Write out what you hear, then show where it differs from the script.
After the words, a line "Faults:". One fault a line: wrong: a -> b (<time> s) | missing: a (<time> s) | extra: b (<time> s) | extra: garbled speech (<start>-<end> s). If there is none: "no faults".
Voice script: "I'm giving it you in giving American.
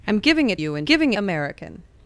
"I'm giving it you in giving American.
Faults:
no faults